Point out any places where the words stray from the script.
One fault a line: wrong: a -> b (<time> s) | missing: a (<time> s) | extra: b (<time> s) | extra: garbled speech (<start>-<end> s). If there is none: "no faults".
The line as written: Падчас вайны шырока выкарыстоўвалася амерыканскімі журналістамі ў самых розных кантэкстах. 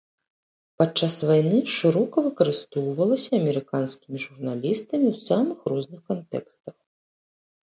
no faults